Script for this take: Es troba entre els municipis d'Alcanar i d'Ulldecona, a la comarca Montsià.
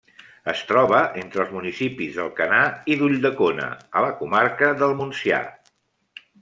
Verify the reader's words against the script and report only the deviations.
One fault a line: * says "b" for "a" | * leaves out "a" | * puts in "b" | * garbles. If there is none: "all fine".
* puts in "del"